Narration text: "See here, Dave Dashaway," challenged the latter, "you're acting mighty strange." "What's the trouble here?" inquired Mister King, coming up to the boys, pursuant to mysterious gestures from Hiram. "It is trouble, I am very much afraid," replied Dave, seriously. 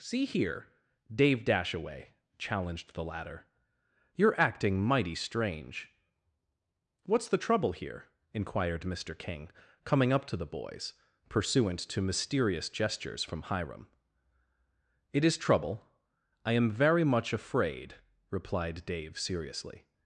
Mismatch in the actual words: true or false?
false